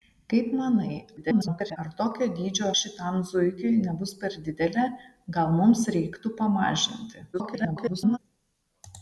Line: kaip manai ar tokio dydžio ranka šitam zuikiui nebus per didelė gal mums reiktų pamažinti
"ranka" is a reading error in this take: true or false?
true